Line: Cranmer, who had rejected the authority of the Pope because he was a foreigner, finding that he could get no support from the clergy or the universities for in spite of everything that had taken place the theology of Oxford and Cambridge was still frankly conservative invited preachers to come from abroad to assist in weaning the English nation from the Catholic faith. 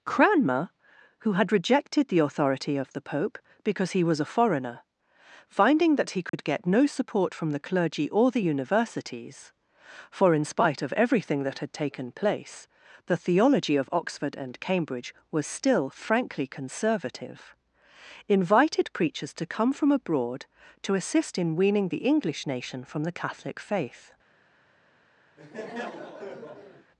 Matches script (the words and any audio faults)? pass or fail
fail